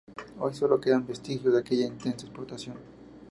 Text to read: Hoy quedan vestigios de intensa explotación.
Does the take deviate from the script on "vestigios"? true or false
false